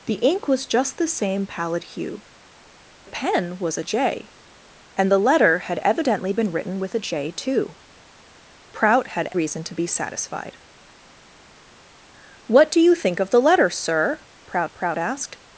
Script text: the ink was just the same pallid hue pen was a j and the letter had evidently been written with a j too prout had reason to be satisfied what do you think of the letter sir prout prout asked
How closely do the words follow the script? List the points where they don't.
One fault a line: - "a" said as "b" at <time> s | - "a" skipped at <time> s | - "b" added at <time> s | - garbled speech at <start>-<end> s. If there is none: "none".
none